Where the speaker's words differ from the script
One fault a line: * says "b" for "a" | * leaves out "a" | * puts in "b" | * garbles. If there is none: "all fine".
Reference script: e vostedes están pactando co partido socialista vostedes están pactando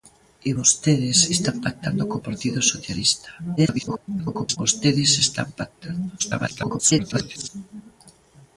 * garbles
* garbles